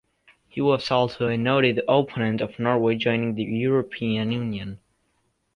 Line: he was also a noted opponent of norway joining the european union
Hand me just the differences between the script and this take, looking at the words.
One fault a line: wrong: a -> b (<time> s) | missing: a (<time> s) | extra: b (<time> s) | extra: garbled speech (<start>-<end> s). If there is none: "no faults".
no faults